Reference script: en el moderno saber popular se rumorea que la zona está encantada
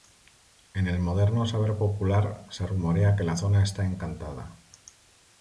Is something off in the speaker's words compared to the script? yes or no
no